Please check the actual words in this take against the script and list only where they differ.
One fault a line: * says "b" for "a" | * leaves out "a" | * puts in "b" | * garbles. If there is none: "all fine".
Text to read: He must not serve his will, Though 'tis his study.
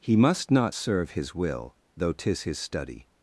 all fine